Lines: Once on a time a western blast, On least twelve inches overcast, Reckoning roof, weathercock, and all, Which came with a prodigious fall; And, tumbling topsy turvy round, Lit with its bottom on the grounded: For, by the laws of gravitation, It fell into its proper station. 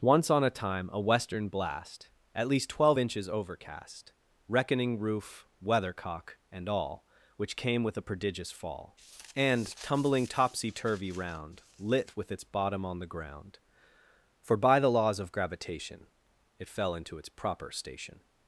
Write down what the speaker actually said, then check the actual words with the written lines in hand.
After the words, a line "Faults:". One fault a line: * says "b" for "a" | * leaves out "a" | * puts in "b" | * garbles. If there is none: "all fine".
Once on a time a western blast, At least twelve inches overcast, Reckoning roof, weathercock, and all, Which came with a prodigious fall; And, tumbling topsy turvy round, Lit with its bottom on the ground: For, by the laws of gravitation, It fell into its proper station.
Faults:
* says "At" for "On"
* says "ground" for "grounded"